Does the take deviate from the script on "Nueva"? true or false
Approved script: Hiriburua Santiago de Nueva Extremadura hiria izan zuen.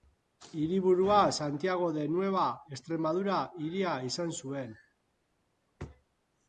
false